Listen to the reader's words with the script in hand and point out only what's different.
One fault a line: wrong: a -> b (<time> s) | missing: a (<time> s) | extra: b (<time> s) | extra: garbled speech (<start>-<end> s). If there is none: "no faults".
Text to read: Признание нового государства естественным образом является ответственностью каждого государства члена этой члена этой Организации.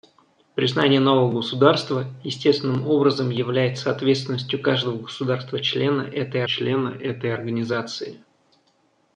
no faults